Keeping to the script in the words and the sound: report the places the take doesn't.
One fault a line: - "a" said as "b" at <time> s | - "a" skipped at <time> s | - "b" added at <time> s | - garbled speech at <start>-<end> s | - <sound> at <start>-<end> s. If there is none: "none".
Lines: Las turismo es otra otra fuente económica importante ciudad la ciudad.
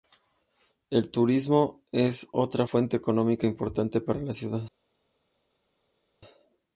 - "Las" said as "El" at 0.9 s
- "otra" skipped at 2.7 s
- "ciudad" said as "para" at 4.0 s